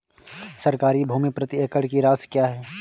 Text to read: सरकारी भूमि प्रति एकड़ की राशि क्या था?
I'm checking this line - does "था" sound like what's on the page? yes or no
no